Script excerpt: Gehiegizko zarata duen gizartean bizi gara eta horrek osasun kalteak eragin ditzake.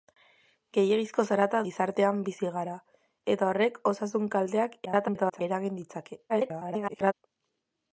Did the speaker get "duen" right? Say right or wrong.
wrong